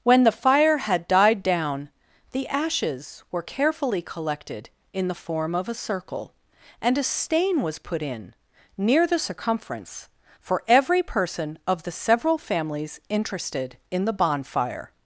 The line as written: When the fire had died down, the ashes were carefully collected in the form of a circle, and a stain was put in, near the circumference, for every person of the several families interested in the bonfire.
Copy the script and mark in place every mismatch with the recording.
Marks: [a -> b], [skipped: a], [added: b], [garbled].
When the fire had died down, the ashes were carefully collected in the form of a circle, and a stain was put in, near the circumference, for every person of the several families interested in the bonfire.